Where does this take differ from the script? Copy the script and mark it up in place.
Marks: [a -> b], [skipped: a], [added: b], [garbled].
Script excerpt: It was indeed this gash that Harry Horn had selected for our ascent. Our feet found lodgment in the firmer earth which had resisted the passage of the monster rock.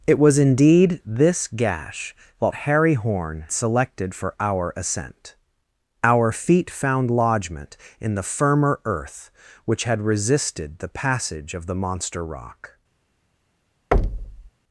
It was indeed this gash that Harry Horn [skipped: had] selected for our ascent. Our feet found lodgment in the firmer earth which had resisted the passage of the monster rock.